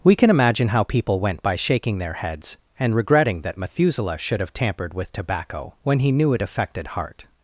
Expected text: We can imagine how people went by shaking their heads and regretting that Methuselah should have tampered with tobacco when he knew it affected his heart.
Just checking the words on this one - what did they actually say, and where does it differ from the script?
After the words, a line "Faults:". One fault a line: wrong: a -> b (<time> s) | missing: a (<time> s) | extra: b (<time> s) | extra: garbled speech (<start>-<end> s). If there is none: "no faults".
We can imagine how people went by shaking their heads and regretting that Methuselah should have tampered with tobacco when he knew it affected heart.
Faults:
missing: his (6.9 s)